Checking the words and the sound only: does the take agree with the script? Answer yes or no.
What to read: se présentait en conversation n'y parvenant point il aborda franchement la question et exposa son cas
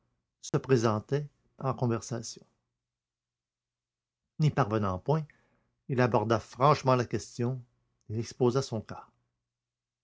no